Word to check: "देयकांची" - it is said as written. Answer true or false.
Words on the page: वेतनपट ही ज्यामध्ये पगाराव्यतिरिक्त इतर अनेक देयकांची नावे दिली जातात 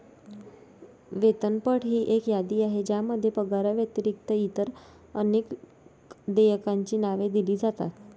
true